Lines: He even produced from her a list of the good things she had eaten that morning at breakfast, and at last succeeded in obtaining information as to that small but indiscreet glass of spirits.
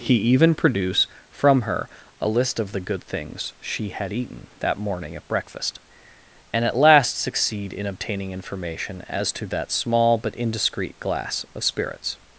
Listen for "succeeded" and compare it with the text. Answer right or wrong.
wrong